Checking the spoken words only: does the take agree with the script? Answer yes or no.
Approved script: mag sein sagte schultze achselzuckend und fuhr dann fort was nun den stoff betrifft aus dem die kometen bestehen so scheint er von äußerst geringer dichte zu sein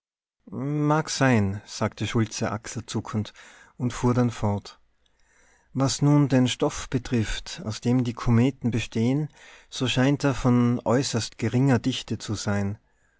yes